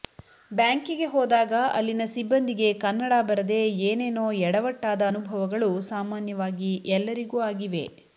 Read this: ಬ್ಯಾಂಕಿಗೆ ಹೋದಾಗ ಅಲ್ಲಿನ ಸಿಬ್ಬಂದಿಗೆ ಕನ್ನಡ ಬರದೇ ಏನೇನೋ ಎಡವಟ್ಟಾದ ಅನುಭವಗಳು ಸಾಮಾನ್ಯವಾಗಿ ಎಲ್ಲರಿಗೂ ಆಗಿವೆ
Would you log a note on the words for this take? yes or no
no